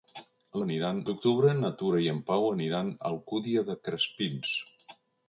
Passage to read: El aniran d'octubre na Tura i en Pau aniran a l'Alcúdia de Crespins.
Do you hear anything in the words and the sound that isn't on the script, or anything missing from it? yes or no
no